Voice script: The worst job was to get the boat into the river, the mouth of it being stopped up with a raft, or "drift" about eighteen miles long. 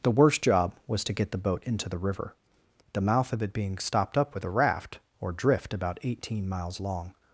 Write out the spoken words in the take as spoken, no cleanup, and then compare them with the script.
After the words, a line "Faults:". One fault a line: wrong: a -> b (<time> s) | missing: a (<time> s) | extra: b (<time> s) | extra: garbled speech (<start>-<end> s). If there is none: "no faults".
The worst job was to get the boat into the river, the mouth of it being stopped up with a raft, or "drift" about eighteen miles long.
Faults:
no faults